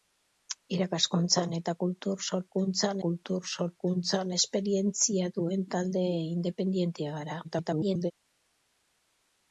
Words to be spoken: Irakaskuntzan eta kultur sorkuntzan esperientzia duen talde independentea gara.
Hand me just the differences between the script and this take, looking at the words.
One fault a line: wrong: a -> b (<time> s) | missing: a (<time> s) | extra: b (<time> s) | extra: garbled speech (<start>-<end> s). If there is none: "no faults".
extra: kultur sorkuntzan (3.1 s)
extra: garbled speech (7.4-8.1 s)